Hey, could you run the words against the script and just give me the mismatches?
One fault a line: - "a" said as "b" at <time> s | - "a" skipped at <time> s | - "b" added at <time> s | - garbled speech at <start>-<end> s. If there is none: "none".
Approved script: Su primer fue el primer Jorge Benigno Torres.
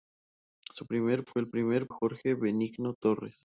none